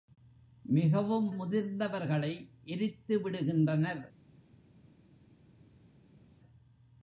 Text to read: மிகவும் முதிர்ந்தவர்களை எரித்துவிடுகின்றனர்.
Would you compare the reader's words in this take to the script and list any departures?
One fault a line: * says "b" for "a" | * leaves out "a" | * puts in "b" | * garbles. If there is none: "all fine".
all fine